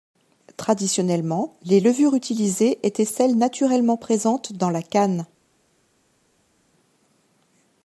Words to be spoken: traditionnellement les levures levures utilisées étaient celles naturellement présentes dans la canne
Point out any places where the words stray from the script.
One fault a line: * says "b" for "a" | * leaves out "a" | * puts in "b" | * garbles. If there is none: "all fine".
* leaves out "levures"